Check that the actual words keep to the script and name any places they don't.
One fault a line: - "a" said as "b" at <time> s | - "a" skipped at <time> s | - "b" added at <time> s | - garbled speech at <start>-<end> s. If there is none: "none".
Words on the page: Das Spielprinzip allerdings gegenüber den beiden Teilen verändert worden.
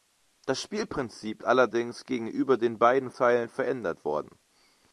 none